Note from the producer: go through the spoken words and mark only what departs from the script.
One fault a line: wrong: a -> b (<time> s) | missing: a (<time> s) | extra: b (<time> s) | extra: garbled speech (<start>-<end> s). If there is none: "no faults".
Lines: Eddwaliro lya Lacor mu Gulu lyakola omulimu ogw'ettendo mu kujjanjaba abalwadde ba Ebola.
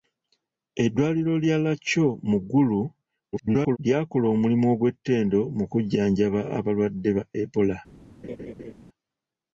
extra: garbled speech (3.3-3.8 s)